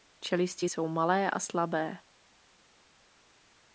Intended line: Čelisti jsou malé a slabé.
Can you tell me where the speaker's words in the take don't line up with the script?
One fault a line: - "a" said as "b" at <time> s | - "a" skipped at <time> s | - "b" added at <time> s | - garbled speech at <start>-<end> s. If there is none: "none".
none